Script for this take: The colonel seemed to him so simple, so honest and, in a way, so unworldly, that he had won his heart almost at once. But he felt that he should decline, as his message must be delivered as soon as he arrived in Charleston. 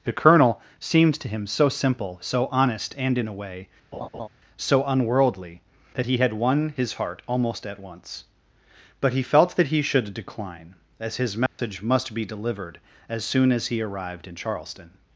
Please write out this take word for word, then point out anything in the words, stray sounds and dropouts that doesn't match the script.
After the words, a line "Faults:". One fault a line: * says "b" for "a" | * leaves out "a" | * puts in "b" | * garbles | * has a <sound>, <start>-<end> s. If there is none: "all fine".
The colonel seemed to him so simple, so honest and, in a way, so unworldly, that he had won his heart almost at once. But he felt that he should decline, as his message must be delivered as soon as he arrived in Charleston.
Faults:
* has a laugh, 3.9-4.3 s
* has a dropout, 11.5-11.6 s